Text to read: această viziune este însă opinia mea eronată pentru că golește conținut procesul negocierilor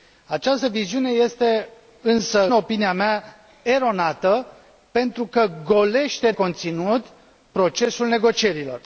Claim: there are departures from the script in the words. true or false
false